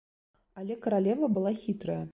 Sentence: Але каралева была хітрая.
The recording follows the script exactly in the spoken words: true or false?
true